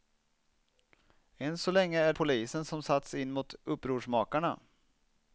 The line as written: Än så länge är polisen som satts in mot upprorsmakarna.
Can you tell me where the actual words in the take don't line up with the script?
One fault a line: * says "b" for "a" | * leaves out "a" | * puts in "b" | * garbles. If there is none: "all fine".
all fine